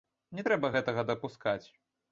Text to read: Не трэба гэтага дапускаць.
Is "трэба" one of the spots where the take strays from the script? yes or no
no